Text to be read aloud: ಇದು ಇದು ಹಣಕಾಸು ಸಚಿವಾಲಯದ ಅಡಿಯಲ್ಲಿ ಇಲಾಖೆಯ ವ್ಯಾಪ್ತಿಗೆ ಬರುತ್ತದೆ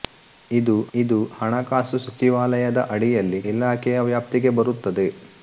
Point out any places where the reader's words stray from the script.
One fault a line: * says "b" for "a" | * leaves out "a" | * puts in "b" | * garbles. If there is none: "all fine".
all fine